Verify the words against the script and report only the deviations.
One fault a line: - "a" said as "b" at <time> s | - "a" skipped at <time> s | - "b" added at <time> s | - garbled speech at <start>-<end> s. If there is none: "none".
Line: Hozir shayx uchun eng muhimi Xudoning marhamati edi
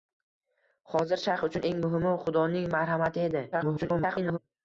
- garbled speech at 3.5-4.4 s